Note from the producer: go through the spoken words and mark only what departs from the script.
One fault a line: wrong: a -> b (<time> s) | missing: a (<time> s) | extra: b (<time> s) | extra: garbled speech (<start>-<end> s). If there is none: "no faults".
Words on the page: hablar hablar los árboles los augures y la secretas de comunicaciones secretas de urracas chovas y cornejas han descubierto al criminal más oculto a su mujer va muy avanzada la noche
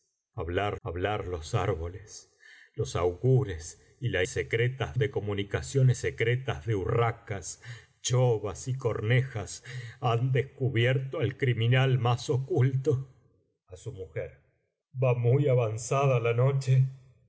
no faults